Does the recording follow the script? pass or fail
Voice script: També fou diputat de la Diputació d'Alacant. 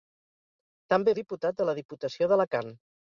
fail